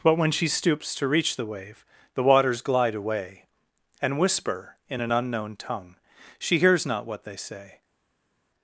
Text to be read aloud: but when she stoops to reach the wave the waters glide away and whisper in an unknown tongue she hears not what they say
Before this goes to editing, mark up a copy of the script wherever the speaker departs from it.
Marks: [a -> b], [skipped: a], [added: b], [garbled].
but when she stoops to reach the wave the waters glide away and whisper in an unknown tongue she hears not what they say